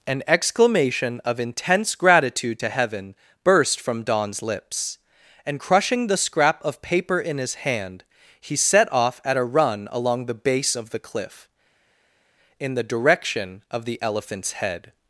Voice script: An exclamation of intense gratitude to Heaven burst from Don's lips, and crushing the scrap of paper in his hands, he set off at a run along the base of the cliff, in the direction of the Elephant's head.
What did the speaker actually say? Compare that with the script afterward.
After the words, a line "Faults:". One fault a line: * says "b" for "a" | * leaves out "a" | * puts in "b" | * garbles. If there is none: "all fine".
An exclamation of intense gratitude to Heaven burst from Don's lips, and crushing the scrap of paper in his hand, he set off at a run along the base of the cliff, in the direction of the Elephant's head.
Faults:
* says "hand" for "hands"